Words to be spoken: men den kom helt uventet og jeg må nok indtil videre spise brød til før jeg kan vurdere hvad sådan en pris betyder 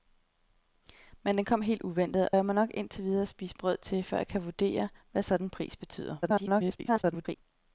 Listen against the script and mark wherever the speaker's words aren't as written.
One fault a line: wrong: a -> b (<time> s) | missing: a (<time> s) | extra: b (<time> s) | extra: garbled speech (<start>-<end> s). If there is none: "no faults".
missing: og (2.3 s)
extra: garbled speech (6.2-7.4 s)